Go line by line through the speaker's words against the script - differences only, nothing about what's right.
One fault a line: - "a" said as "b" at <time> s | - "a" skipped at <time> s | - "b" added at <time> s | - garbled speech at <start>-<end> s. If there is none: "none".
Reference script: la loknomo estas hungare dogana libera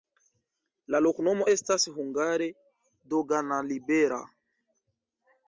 none